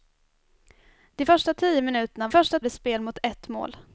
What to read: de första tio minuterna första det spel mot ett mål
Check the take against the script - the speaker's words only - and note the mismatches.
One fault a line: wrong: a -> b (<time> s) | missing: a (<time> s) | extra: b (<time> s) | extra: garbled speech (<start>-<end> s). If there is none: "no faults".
no faults